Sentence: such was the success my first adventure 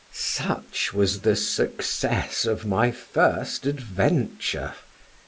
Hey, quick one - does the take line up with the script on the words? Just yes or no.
no